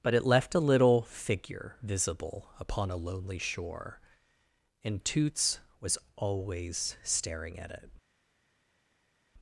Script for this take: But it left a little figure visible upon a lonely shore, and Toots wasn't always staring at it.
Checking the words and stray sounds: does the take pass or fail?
fail